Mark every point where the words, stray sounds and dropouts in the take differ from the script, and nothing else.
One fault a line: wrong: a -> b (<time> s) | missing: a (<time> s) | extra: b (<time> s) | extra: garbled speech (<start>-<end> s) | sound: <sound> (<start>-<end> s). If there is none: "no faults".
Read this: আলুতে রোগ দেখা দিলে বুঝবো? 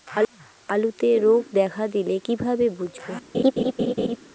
extra: কিভাবে (2.2 s)
sound: laugh (3.3-4.2 s)